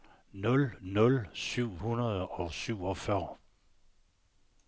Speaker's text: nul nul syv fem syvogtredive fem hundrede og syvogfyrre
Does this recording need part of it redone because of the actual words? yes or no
yes